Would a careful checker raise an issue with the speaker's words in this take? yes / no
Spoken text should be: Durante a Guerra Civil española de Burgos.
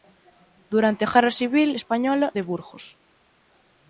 no